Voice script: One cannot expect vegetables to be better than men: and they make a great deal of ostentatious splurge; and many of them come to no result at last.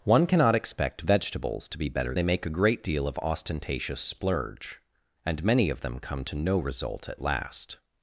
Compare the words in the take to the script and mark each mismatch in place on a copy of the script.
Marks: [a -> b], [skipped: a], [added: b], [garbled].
One cannot expect vegetables to be better [skipped: than men: and] they make a great deal of ostentatious splurge; and many of them come to no result at last.